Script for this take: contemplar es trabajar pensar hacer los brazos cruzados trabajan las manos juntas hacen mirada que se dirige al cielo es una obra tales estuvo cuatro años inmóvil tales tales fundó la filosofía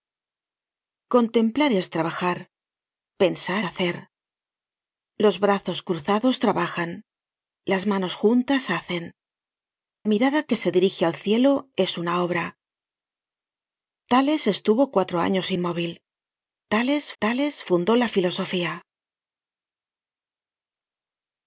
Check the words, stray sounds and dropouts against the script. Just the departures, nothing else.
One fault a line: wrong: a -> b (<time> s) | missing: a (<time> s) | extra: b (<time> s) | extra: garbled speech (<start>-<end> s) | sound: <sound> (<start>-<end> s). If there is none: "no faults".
no faults